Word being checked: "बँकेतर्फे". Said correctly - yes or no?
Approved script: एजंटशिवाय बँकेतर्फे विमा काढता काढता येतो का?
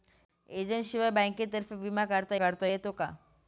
yes